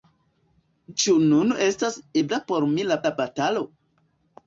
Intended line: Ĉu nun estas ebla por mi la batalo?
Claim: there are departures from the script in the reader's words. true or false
true